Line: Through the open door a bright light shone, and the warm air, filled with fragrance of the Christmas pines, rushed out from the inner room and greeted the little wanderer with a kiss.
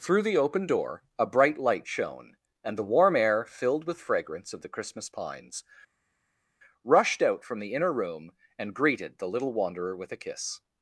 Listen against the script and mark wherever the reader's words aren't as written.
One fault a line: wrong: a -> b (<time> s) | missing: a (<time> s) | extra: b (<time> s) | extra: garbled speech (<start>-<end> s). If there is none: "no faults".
no faults